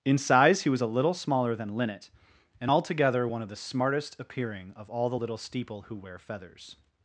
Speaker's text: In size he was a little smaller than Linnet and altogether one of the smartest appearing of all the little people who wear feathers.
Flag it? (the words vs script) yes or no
yes